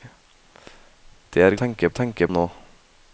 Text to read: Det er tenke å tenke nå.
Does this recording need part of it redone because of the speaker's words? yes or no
no